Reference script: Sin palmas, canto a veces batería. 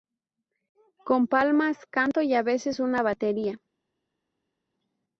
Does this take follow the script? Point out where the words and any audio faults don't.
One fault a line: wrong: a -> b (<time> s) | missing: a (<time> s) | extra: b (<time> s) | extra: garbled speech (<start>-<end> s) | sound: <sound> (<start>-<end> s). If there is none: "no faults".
wrong: Sin -> Con (1.0 s)
extra: y (2.2 s)
extra: una (2.8 s)